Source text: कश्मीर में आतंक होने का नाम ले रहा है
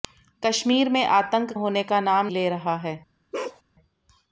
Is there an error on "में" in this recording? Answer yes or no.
no